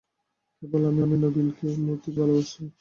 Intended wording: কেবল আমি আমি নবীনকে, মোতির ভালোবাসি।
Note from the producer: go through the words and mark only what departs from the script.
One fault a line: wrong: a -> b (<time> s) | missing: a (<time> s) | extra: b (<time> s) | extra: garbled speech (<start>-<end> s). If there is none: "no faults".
no faults